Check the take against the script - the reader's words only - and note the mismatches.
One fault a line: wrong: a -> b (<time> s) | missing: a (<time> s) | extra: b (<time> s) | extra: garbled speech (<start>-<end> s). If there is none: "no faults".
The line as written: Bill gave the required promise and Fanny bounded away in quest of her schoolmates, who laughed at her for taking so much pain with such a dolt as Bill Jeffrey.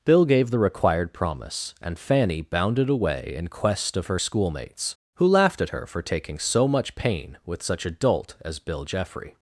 no faults